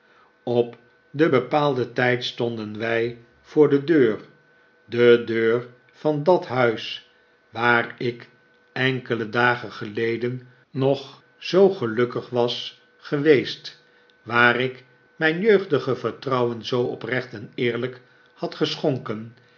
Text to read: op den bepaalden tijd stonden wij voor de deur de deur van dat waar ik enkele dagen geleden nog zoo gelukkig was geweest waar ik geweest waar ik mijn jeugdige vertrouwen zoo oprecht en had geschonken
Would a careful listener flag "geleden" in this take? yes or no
no